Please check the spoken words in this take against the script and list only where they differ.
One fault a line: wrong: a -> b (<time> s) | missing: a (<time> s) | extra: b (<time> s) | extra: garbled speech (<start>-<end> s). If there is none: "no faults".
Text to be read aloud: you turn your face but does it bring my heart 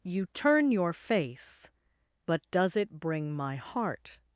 no faults